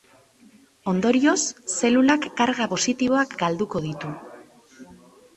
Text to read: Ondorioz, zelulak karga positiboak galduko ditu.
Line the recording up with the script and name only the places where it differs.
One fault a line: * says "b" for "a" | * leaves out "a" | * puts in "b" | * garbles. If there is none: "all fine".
all fine